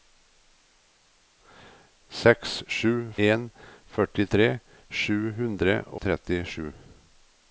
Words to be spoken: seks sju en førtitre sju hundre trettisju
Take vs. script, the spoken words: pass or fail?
pass